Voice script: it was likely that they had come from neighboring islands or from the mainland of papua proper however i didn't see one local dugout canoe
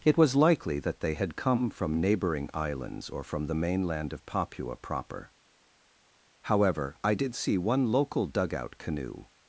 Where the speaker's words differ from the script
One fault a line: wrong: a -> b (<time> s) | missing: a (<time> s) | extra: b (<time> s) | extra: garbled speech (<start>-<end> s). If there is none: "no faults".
wrong: didn't -> did (7.1 s)